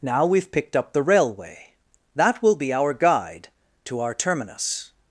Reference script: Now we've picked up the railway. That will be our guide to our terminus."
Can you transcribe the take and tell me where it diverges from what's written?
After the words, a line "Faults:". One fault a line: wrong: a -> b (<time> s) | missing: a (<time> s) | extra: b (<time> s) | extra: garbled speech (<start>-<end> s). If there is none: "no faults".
Now we've picked up the railway. That will be our guide to our terminus."
Faults:
no faults